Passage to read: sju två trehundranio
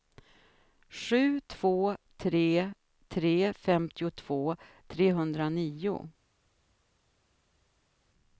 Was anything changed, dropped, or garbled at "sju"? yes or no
no